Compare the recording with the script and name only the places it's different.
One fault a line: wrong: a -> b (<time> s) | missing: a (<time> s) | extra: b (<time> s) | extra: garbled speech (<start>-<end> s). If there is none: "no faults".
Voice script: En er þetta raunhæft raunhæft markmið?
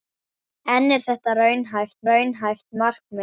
no faults